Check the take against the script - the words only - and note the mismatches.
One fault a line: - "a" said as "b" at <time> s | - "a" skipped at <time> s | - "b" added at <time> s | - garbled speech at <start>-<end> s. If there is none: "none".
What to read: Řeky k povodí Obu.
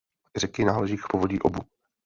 - "náleží" added at 0.7 s